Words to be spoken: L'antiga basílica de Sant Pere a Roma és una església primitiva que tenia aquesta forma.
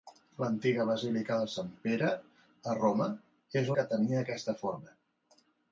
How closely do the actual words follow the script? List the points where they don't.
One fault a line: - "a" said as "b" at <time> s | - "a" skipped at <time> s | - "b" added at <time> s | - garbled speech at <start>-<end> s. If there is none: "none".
- "una església primitiva" skipped at 3.7 s